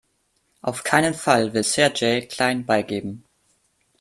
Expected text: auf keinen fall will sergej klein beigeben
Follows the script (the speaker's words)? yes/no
yes